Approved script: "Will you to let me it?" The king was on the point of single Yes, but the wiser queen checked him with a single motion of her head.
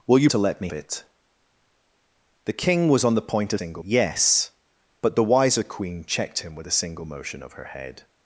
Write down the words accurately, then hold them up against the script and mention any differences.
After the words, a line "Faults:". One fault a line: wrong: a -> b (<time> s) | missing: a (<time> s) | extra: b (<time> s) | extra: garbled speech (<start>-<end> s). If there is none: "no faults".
"Will you to let me it?" The king was on the point of single Yes, but the wiser queen checked him with a single motion of her head.
Faults:
no faults